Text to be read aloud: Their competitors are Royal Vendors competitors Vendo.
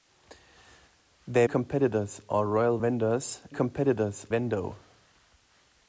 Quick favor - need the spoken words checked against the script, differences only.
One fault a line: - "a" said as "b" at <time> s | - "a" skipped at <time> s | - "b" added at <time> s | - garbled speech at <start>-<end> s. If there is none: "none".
none